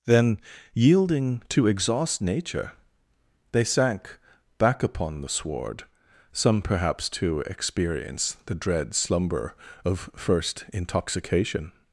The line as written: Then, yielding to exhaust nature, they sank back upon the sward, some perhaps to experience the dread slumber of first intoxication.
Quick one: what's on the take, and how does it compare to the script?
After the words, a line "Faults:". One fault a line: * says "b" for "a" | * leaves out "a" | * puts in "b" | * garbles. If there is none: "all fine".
Then, yielding to exhaust nature, they sank back upon the sward, some perhaps to experience the dread slumber of first intoxication.
Faults:
all fine